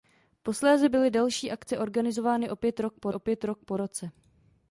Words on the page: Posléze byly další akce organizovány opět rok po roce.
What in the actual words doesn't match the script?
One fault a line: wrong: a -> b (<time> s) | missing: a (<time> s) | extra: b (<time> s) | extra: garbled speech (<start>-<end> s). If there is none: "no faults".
extra: opět rok po (3.1 s)